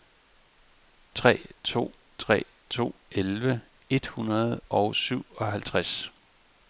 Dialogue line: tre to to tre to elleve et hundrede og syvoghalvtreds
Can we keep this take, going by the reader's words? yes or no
no